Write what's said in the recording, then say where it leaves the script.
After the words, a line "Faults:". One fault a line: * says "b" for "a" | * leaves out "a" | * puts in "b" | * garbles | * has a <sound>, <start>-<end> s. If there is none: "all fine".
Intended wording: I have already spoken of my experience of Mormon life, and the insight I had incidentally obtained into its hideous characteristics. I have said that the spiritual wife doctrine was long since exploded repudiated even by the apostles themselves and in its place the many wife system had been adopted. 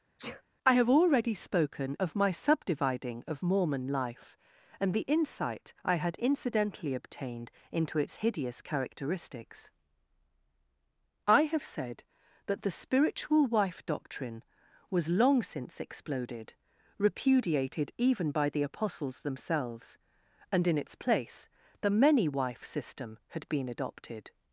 I have already spoken of my subdividing of Mormon life, and the insight I had incidentally obtained into its hideous characteristics. I have said that the spiritual wife doctrine was long since exploded repudiated even by the apostles themselves and in its place the many wife system had been adopted.
Faults:
* has a sneeze, 0.2-0.4 s
* says "subdividing" for "experience"